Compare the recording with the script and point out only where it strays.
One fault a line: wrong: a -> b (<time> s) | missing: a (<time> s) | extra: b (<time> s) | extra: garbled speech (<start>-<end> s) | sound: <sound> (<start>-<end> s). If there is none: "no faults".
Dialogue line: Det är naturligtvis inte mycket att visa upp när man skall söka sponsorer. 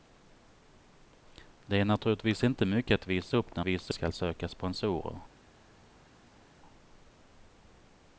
wrong: man -> visa (3.6 s)